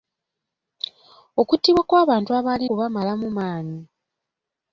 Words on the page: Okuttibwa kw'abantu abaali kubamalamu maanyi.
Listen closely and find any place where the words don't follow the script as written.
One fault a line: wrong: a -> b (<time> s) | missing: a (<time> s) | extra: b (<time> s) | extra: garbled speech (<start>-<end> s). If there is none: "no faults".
no faults